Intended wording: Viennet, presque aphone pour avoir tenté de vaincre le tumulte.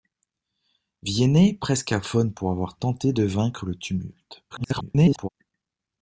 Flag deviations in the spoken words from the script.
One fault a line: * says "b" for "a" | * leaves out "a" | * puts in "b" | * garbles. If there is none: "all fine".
* garbles